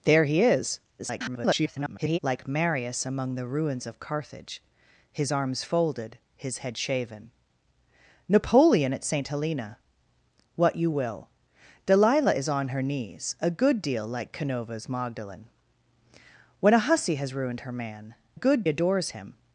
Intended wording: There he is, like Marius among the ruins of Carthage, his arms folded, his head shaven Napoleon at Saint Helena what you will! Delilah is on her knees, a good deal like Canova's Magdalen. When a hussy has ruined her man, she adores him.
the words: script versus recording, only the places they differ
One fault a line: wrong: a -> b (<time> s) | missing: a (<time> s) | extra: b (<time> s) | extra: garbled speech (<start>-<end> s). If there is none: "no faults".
extra: garbled speech (1.0-2.2 s)
wrong: she -> good (18.3 s)